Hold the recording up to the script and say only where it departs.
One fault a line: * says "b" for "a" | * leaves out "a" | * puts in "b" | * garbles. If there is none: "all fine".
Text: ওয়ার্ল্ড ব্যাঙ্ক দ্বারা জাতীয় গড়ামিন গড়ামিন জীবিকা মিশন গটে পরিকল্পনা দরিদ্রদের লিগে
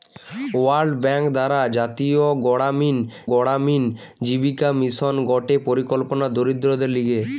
all fine